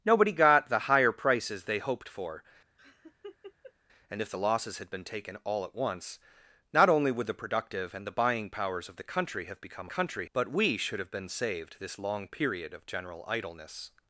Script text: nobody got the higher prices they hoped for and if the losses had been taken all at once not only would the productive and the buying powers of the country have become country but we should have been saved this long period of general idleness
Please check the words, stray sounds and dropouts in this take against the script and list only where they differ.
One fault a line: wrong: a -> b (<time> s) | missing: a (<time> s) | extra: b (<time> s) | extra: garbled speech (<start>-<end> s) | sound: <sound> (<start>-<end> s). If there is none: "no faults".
sound: laugh (2.8-3.7 s)